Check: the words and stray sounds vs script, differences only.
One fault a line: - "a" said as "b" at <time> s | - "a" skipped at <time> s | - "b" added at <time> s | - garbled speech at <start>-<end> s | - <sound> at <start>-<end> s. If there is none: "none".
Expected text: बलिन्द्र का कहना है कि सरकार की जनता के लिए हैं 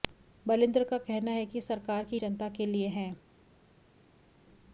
none